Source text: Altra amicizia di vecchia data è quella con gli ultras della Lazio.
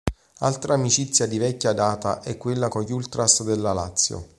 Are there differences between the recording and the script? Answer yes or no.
no